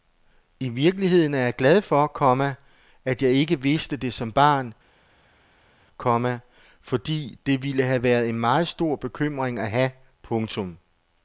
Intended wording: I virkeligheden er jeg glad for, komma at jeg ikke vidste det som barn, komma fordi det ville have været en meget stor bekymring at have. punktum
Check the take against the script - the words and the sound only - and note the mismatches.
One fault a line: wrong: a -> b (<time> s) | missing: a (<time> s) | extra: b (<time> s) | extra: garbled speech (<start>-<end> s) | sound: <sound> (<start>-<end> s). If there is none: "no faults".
no faults